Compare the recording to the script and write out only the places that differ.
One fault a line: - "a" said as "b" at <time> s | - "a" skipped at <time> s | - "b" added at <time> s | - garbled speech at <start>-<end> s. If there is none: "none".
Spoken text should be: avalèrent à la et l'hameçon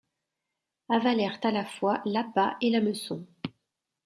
- "fois l'appât" added at 1.6 s